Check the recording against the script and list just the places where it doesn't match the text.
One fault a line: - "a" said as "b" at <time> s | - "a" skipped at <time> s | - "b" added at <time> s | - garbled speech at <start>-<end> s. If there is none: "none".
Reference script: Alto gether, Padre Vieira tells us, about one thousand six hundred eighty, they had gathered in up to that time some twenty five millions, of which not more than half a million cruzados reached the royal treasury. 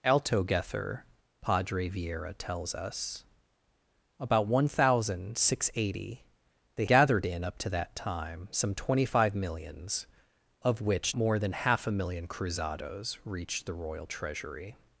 - "had" skipped at 6.8 s
- "not" skipped at 11.2 s